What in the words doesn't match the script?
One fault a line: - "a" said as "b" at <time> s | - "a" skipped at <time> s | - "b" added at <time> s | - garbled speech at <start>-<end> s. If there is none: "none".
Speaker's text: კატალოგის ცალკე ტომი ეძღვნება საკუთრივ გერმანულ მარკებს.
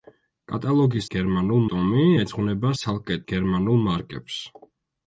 - "ცალკე" said as "გერმანულ" at 1.2 s
- "საკუთრივ" said as "ცალკე" at 2.8 s